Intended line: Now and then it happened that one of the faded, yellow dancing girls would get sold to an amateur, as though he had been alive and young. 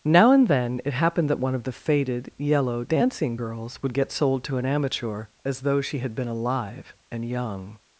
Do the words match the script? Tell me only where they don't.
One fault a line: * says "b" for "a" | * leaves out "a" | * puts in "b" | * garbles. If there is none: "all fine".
* says "she" for "he"